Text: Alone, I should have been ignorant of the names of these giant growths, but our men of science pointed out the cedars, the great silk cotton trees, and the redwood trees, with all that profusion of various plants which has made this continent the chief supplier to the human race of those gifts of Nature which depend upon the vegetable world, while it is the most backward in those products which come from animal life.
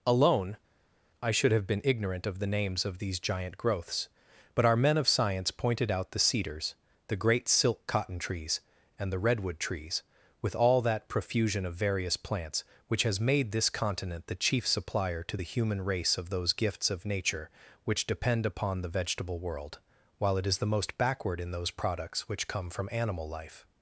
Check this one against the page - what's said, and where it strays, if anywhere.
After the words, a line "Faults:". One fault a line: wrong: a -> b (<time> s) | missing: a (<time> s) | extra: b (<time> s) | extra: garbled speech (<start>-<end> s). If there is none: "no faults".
Alone, I should have been ignorant of the names of these giant growths, but our men of science pointed out the cedars, the great silk cotton trees, and the redwood trees, with all that profusion of various plants which has made this continent the chief supplier to the human race of those gifts of Nature which depend upon the vegetable world, while it is the most backward in those products which come from animal life.
Faults:
no faults